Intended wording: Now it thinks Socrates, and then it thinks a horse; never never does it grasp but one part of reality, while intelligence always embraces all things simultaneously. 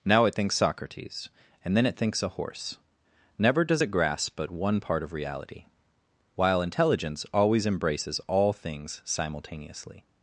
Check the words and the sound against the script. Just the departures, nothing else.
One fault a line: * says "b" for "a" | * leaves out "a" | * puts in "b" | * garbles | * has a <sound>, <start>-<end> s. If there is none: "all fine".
* leaves out "never"